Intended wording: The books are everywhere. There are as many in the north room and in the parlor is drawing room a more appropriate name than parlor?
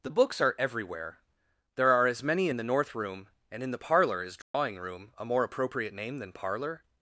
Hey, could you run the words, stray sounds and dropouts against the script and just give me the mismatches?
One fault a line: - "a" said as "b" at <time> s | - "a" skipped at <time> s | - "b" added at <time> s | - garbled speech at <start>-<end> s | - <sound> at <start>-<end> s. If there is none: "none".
- dropout at 4.4-4.5 s